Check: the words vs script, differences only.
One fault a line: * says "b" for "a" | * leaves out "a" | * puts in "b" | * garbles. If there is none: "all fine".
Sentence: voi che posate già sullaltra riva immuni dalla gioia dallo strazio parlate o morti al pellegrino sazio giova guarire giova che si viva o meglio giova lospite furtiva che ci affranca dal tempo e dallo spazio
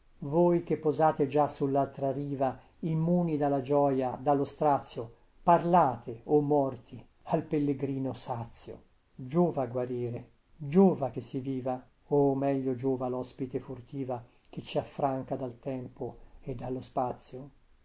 all fine